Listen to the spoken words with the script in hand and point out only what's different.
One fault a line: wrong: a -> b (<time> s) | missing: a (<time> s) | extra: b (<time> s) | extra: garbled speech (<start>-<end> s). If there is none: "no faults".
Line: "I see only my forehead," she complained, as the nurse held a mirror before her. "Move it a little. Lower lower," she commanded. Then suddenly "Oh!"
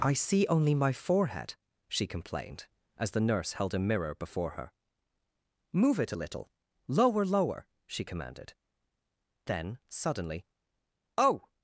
no faults